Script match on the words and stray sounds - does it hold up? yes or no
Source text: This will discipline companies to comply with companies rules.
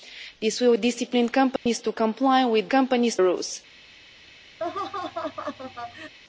no